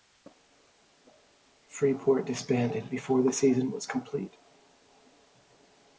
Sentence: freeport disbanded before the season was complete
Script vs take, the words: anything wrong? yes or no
no